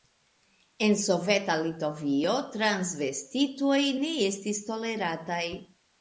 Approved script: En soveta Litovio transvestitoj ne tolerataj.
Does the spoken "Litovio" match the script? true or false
true